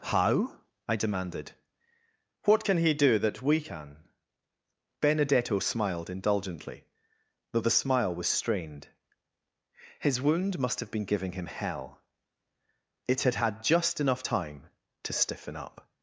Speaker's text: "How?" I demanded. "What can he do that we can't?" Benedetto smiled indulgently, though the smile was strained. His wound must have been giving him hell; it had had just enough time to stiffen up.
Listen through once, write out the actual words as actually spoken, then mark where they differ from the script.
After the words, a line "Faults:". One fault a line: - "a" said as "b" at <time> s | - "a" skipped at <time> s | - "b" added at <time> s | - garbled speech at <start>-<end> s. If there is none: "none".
"How?" I demanded. "What can he do that we can?" Benedetto smiled indulgently, though the smile was strained. His wound must have been giving him hell; it had had just enough time to stiffen up.
Faults:
- "can't" said as "can" at 3.6 s